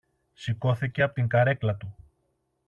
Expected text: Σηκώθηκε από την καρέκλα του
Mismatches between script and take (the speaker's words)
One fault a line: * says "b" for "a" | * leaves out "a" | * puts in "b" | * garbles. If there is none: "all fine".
all fine